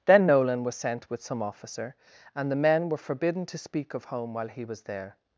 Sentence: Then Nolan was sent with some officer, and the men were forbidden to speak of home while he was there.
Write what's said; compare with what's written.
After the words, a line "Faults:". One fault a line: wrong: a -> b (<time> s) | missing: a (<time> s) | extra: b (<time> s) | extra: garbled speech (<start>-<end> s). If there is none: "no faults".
Then Nolan was sent with some officer, and the men were forbidden to speak of home while he was there.
Faults:
no faults